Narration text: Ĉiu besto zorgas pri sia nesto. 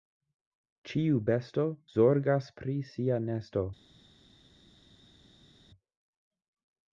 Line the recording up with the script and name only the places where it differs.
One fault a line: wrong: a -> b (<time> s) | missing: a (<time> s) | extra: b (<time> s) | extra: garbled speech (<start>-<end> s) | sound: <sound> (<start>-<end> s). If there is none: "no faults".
no faults